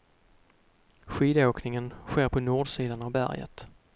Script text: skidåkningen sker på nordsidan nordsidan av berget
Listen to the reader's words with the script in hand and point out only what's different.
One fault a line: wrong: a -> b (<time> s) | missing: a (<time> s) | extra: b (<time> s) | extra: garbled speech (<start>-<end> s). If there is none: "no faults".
missing: nordsidan (3.0 s)